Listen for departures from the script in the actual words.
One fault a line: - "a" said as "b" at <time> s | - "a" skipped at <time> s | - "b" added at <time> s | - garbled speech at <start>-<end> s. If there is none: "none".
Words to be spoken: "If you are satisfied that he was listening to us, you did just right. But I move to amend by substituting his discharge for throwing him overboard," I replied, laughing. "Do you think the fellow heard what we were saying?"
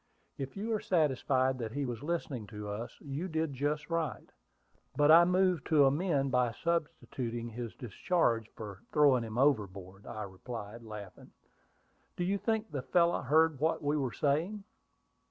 none